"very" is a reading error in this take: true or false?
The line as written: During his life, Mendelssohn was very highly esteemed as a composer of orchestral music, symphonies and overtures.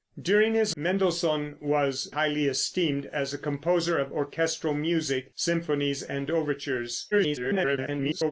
true